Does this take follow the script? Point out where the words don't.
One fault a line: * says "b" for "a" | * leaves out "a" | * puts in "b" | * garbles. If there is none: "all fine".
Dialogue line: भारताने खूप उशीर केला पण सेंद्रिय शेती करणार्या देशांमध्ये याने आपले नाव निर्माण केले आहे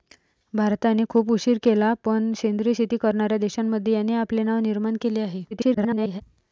* garbles